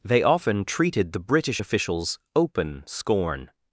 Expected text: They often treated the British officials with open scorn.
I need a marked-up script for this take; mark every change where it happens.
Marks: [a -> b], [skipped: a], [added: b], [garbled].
They often treated the British officials [skipped: with] open scorn.